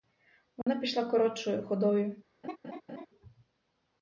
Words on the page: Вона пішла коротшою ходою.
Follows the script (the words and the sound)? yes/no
no